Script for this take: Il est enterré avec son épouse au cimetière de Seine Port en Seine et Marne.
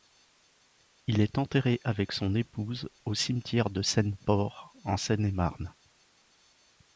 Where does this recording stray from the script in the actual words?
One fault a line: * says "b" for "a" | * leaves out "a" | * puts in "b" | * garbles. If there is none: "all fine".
all fine